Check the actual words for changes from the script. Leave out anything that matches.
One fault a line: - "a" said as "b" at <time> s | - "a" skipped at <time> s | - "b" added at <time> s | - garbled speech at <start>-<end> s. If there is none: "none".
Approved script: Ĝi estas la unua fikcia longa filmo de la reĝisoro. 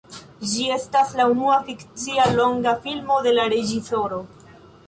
none